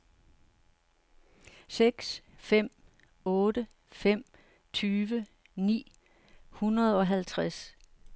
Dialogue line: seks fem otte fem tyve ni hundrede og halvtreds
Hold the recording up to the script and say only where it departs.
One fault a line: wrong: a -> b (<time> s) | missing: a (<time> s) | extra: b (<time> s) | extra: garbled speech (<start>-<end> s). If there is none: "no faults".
no faults